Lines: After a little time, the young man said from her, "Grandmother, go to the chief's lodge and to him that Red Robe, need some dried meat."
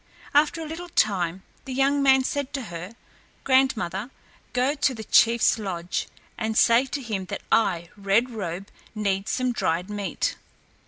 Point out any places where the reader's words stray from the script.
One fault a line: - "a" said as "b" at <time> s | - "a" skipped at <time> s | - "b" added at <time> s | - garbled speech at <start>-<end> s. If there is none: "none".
- "from" said as "to" at 2.5 s
- "say" added at 6.6 s
- "I" added at 7.5 s